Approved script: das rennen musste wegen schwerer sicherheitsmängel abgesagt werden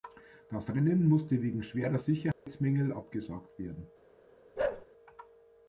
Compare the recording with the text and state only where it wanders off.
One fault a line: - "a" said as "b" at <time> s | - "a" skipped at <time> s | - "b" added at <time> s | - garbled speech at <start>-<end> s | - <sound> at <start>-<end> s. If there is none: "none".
- dropout at 2.3-2.5 s
- bark at 4.6-4.9 s